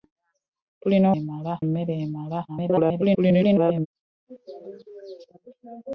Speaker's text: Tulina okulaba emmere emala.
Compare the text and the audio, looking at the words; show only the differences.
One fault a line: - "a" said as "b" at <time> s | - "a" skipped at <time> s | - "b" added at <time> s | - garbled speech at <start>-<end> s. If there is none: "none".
- "okulaba" said as "emala" at 1.2 s
- garbled speech at 2.5-3.9 s